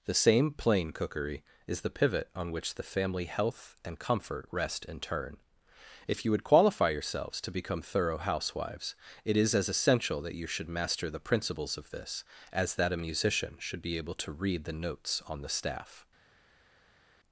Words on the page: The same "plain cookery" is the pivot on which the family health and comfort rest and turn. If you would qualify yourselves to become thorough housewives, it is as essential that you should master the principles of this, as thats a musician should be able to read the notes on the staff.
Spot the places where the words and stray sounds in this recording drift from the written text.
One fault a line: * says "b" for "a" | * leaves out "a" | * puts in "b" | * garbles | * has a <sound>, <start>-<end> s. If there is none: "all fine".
* says "that" for "thats"